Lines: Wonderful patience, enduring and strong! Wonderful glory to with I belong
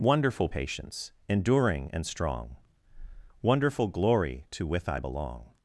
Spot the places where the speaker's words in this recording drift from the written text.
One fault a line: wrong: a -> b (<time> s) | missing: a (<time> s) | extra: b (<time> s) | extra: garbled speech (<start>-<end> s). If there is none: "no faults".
no faults